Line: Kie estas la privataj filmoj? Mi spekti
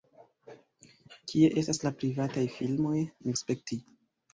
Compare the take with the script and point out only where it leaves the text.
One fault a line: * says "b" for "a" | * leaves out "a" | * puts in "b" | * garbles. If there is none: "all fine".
all fine